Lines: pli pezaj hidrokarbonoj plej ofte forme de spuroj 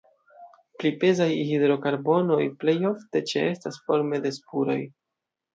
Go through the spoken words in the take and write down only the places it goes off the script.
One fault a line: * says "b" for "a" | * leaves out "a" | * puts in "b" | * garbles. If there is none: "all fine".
* puts in "ĉeestas"